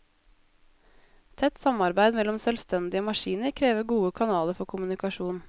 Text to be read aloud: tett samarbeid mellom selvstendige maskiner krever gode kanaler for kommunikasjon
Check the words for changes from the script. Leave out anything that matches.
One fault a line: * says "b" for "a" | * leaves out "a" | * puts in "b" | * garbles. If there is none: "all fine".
all fine